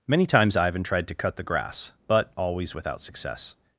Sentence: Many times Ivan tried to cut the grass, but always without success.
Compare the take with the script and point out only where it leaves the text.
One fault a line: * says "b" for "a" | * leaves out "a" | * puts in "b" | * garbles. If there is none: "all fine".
all fine